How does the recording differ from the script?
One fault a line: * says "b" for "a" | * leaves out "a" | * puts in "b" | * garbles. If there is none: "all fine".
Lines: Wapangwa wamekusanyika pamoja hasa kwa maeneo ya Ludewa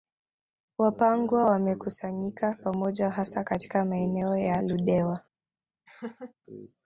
* says "katika" for "kwa"